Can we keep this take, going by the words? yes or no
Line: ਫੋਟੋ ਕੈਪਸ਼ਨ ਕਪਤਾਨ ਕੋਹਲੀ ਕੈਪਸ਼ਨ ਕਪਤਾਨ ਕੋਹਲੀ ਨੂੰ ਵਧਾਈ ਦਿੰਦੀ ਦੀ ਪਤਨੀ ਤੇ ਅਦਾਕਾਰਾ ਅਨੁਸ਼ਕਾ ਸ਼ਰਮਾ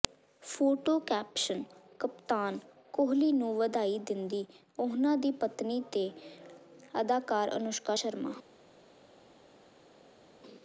no